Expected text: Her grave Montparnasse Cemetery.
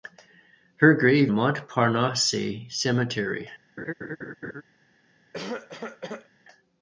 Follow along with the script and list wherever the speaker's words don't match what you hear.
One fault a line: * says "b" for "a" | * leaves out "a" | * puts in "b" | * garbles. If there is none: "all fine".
all fine